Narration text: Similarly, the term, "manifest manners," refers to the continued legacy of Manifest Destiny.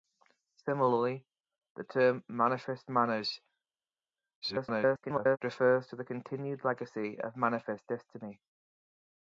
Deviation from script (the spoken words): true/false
true